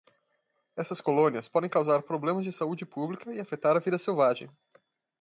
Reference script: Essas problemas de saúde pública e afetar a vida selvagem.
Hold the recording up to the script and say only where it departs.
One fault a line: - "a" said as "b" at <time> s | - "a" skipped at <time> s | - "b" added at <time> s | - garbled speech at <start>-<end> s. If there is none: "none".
- "colônias podem causar" added at 1.0 s